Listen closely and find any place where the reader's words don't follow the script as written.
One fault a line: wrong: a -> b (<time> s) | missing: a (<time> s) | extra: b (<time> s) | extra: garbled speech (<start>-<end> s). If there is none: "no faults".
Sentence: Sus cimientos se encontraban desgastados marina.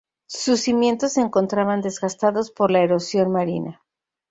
extra: por la erosión (2.5 s)